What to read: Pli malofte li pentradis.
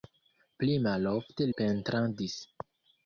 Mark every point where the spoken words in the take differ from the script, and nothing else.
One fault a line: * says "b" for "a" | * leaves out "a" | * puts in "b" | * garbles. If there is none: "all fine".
* leaves out "li"